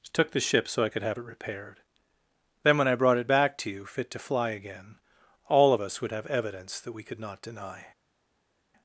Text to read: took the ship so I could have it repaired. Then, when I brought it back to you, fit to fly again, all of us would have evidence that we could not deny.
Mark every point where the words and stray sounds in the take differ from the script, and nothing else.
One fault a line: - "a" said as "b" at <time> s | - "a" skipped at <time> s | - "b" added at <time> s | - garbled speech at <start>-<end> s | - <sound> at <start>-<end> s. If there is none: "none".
none